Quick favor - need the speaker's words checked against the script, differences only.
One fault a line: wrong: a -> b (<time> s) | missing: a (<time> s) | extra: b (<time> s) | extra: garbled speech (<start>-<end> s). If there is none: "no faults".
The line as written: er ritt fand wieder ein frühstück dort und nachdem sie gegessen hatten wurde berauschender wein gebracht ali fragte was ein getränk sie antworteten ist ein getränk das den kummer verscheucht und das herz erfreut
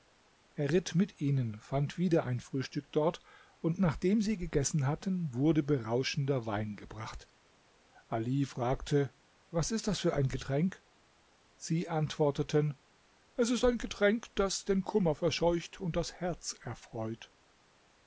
extra: mit ihnen (0.9 s)
extra: ist das für (9.7 s)
extra: es (13.4 s)